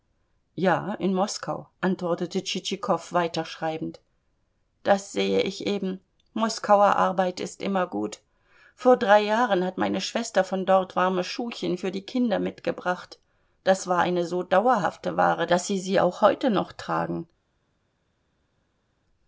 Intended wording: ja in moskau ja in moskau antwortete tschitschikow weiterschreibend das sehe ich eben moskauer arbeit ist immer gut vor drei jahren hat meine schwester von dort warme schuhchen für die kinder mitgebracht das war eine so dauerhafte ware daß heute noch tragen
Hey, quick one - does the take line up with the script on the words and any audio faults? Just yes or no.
no